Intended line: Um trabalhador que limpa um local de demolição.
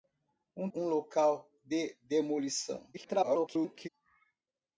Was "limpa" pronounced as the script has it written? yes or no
no